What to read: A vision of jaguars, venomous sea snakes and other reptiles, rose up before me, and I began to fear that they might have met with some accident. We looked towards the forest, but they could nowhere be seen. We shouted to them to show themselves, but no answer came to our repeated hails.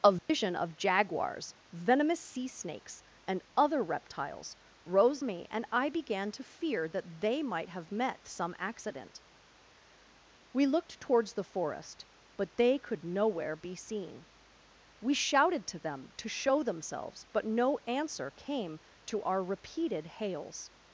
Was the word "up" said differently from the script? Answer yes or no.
yes